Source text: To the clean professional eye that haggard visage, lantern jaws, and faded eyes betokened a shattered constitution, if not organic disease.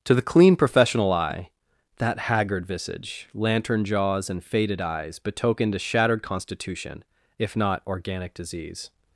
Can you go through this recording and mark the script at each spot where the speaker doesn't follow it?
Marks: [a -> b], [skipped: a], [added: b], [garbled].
To the clean professional eye that haggard visage, lantern jaws, and faded eyes betokened a shattered constitution, if not organic disease.